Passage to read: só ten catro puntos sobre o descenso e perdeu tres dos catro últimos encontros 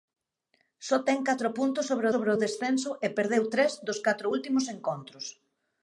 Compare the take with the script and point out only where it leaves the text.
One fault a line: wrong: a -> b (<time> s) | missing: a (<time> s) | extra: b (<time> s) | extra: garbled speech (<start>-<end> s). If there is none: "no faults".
extra: sobre (2.1 s)